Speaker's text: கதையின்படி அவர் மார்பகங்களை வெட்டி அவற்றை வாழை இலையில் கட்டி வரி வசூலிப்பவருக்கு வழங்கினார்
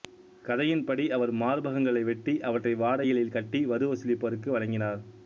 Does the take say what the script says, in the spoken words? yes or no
yes